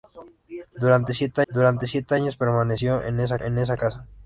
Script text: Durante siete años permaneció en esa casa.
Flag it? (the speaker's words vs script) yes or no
yes